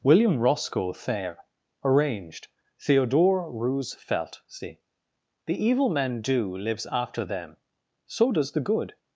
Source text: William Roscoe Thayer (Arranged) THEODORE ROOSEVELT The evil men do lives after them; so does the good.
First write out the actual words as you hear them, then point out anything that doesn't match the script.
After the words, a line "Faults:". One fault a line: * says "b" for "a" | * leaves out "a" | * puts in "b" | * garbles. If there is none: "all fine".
William Roscoe Thayer (Arranged) THEODORE ROOSEVELT see The evil men do lives after them; so does the good.
Faults:
* puts in "see"